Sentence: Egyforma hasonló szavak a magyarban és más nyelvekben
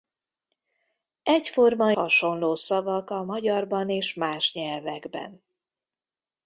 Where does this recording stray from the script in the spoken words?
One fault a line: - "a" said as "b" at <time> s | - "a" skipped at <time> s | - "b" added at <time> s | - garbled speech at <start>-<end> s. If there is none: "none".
none